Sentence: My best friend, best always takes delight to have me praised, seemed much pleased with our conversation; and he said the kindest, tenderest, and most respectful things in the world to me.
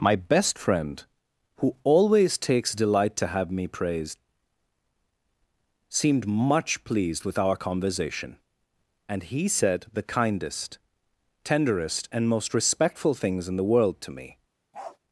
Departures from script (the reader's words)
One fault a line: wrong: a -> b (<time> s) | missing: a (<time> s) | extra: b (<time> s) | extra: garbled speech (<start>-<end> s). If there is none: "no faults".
wrong: best -> who (1.6 s)